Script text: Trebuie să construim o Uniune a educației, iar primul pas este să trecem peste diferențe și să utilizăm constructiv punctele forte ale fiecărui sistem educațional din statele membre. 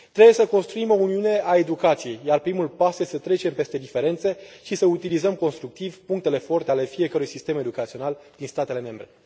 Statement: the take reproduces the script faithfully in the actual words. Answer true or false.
true